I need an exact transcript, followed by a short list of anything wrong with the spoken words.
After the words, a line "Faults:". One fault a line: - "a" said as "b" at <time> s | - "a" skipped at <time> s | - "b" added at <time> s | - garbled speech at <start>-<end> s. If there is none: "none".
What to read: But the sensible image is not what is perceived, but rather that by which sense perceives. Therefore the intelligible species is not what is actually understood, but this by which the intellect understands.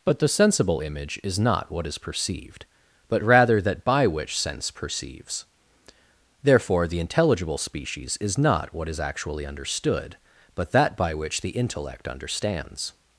But the sensible image is not what is perceived, but rather that by which sense perceives. Therefore the intelligible species is not what is actually understood, but that by which the intellect understands.
Faults:
- "this" said as "that" at 10.7 s